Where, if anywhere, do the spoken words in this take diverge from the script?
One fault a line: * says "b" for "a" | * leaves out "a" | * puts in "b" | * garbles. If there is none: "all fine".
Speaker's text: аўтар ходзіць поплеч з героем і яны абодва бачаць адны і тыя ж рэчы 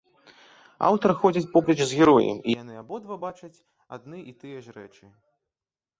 all fine